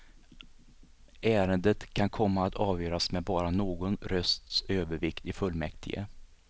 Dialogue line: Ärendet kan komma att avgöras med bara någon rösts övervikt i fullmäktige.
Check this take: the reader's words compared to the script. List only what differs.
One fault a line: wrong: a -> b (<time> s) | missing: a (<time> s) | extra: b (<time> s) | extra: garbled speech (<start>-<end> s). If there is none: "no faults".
no faults